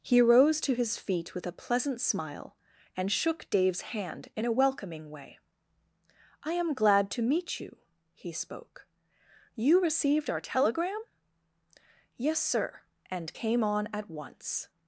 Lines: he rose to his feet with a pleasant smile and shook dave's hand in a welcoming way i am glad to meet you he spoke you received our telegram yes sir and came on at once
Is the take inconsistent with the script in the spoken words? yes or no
no